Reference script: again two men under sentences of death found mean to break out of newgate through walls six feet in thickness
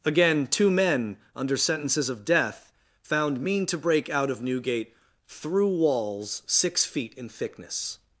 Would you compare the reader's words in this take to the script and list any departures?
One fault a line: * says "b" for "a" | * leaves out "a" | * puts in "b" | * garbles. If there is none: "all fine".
all fine